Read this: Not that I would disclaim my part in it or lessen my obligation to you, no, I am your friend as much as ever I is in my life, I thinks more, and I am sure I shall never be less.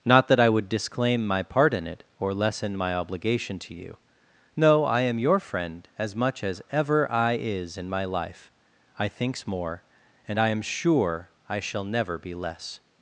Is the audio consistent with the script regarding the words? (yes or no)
yes